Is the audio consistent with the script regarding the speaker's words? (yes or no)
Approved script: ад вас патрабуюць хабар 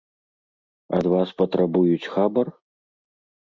yes